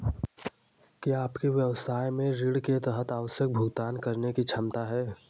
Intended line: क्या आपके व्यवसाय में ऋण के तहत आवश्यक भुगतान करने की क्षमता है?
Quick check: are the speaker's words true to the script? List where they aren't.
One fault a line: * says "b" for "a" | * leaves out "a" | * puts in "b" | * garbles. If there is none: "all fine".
all fine